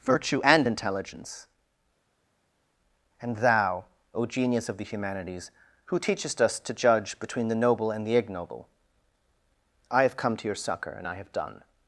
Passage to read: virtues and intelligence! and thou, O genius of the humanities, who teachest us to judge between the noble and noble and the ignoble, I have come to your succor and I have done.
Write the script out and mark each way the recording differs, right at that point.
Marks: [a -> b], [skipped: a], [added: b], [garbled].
[virtues -> virtue] and intelligence! and thou, O genius of the humanities, who teachest us to judge between the noble and [skipped: noble and] the ignoble, I have come to your succor and I have done.